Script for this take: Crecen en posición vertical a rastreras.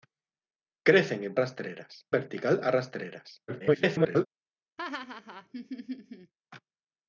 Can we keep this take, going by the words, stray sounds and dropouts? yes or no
no